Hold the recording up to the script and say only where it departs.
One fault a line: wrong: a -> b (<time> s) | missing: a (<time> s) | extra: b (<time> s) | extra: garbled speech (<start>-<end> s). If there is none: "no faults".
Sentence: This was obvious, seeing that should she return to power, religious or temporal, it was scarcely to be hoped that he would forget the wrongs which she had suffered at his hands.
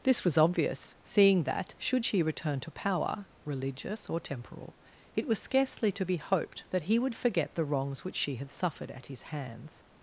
no faults